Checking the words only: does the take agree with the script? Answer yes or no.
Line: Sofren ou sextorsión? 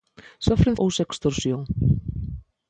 yes